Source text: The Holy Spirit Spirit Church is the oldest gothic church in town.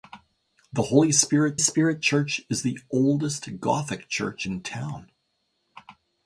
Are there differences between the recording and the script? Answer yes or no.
no